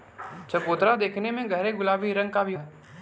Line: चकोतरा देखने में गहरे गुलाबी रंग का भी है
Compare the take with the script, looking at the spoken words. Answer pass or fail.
pass